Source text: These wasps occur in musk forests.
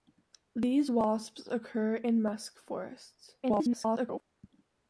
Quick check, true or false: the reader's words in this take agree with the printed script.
false